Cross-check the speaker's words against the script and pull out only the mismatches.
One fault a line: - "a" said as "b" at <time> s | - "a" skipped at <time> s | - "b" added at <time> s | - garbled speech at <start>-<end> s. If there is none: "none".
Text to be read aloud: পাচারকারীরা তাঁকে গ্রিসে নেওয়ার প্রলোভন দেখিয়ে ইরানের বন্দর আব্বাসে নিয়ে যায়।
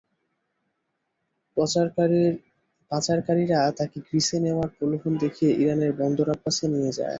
none